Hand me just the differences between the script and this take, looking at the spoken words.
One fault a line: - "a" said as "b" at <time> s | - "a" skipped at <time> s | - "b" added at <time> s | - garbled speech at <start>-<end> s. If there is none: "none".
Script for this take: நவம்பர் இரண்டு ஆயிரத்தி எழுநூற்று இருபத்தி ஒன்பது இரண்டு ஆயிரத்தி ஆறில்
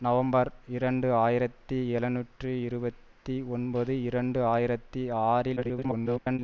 - garbled speech at 5.6-6.4 s